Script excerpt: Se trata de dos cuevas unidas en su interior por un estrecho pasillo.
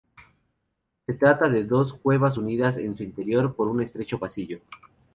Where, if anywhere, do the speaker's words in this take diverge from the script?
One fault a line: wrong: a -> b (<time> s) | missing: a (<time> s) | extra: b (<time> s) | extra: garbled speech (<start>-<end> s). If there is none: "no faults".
no faults